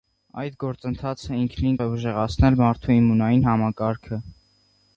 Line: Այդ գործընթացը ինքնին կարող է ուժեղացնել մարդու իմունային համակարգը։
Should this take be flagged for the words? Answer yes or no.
yes